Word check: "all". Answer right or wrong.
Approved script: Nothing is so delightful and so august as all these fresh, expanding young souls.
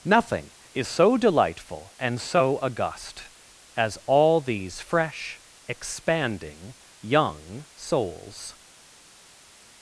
right